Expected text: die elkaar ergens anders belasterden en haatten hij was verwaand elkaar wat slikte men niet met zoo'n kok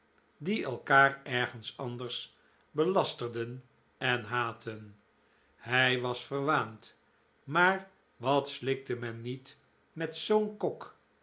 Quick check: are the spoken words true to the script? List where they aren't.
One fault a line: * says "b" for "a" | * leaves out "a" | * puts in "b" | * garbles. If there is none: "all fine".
* says "maar" for "elkaar"